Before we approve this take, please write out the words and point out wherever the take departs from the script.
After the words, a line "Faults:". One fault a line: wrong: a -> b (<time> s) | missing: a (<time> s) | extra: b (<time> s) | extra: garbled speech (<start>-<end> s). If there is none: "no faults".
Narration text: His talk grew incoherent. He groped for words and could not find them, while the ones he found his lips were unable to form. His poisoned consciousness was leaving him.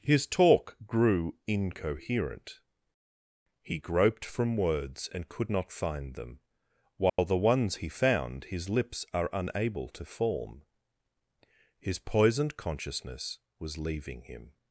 His talk grew incoherent. He groped from words and could not find them, while the ones he found his lips are unable to form. His poisoned consciousness was leaving him.
Faults:
wrong: for -> from (4.2 s)
wrong: were -> are (9.1 s)